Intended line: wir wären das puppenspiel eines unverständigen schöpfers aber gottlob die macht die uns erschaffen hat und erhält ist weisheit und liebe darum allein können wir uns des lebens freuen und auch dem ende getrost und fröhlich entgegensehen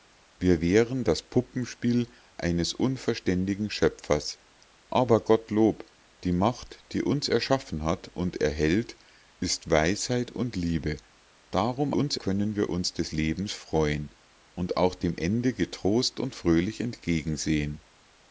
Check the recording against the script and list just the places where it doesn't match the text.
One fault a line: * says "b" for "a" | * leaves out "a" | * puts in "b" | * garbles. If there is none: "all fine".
* says "uns" for "allein"